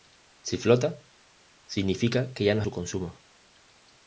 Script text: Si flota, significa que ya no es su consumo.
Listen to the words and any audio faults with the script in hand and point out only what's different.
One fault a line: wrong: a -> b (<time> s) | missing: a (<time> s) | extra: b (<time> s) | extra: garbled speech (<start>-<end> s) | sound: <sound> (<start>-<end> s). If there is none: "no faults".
no faults